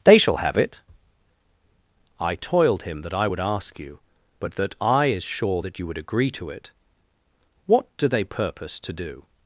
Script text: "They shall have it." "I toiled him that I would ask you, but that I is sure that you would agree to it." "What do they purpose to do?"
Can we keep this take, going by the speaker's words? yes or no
yes